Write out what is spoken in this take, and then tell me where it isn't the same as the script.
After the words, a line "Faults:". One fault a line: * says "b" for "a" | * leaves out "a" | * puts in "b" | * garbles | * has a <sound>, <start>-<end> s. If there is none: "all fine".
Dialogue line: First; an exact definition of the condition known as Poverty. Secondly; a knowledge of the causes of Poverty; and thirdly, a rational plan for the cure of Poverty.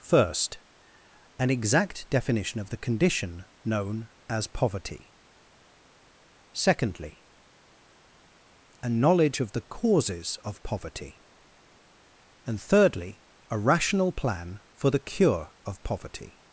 First; an exact definition of the condition known as Poverty. Secondly; a knowledge of the causes of Poverty; and thirdly, a rational plan for the cure of Poverty.
Faults:
all fine